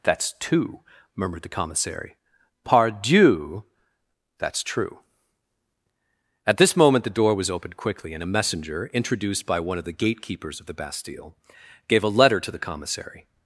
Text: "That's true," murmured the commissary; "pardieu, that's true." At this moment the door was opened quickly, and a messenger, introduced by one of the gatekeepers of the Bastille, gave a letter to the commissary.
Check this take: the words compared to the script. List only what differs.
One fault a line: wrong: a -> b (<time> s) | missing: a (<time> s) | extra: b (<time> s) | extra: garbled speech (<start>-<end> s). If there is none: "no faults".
wrong: true -> two (0.4 s)